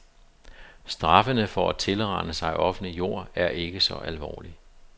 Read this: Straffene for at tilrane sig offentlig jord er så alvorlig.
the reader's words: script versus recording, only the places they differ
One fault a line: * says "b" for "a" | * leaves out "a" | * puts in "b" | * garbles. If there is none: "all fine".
* puts in "ikke"